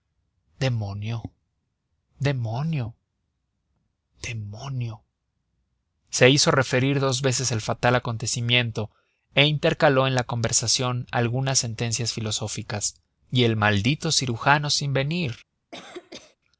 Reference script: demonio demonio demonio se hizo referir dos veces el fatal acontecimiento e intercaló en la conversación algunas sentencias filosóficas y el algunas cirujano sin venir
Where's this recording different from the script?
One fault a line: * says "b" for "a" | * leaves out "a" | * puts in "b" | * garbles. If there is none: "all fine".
* says "maldito" for "algunas"